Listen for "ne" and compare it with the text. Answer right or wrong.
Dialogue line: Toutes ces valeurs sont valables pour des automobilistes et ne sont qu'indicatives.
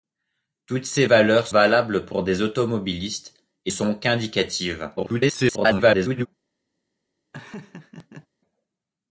wrong